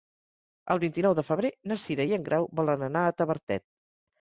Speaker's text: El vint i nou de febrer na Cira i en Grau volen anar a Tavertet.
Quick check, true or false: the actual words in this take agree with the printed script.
true